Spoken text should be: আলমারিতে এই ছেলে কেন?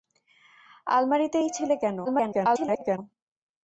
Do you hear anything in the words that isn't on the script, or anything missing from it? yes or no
yes